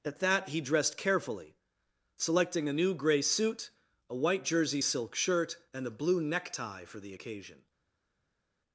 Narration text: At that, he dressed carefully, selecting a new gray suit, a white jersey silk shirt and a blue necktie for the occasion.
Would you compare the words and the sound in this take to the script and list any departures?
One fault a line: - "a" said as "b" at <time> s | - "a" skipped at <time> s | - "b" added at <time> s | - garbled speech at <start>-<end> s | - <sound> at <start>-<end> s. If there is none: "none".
none